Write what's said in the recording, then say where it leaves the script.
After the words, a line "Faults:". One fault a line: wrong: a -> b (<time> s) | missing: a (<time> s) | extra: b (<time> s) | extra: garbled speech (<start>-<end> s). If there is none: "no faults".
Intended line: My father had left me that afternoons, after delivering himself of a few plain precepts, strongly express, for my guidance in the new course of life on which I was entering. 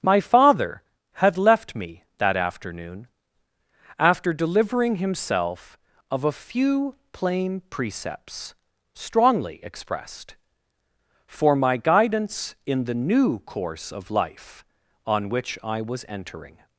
My father had left me that afternoon, after delivering himself of a few plain precepts, strongly expressed, for my guidance in the new course of life on which I was entering.
Faults:
wrong: afternoons -> afternoon (2.4 s)
wrong: express -> expressed (9.6 s)